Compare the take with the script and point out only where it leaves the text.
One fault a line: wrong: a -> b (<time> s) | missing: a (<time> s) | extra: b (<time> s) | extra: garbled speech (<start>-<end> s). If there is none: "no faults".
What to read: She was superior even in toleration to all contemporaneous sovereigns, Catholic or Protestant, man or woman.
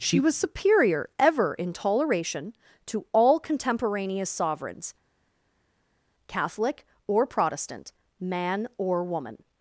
wrong: even -> ever (1.2 s)